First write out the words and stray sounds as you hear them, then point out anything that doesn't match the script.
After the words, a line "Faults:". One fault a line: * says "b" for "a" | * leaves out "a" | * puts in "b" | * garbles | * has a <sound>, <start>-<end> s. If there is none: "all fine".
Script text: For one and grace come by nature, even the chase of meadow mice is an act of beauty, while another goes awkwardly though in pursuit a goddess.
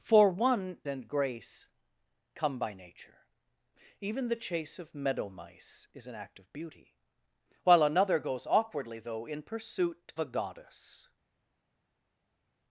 For one and grace come by nature, even the chase of meadow mice is an act of beauty, while another goes awkwardly though in pursuit a goddess.
Faults:
all fine